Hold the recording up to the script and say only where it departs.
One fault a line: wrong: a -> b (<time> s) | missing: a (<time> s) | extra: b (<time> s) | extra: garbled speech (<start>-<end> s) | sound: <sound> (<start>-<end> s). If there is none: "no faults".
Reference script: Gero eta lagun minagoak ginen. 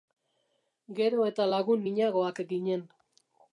no faults